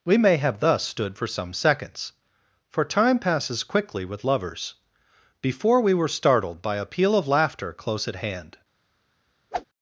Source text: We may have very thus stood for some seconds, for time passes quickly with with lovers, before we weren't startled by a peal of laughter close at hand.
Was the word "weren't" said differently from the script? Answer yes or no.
yes